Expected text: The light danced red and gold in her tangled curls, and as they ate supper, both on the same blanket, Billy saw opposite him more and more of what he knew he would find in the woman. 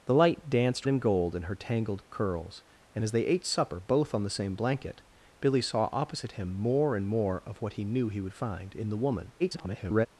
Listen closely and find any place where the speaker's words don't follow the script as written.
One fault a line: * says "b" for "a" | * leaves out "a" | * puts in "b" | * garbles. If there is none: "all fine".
* leaves out "red"
* garbles